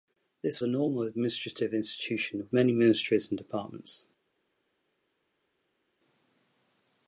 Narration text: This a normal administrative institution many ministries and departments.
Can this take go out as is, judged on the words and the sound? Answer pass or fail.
pass